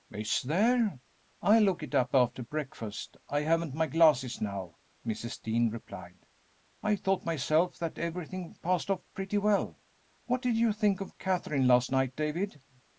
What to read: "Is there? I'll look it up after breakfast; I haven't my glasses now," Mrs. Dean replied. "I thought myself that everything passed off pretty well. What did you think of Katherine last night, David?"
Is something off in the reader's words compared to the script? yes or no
no